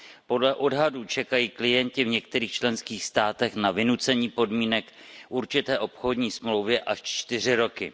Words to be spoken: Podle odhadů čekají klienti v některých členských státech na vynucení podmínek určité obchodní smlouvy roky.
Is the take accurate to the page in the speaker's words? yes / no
no